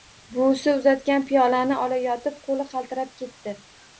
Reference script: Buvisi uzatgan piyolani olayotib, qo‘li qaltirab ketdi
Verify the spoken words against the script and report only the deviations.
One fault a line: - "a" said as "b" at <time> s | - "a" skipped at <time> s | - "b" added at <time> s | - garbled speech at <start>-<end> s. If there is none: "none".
none